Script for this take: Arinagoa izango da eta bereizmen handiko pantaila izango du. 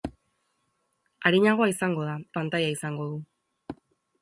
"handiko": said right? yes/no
no